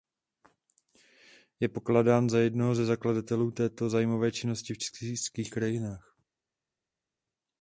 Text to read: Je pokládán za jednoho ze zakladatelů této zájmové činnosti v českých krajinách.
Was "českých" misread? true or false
false